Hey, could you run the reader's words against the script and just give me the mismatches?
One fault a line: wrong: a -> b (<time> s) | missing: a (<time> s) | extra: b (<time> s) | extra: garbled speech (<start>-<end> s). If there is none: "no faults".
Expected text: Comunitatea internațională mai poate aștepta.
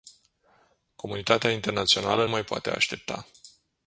no faults